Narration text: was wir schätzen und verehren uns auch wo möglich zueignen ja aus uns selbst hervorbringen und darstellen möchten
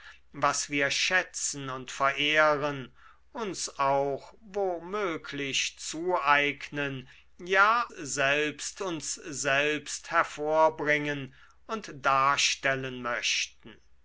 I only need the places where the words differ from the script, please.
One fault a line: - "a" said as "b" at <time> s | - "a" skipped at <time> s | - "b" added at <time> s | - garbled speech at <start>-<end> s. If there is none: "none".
- "aus" said as "selbst" at 7.9 s